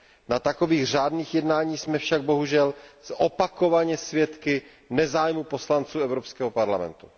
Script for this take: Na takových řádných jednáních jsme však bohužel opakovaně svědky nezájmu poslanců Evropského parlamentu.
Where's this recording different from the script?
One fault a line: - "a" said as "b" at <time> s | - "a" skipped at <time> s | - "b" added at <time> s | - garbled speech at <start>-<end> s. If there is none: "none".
none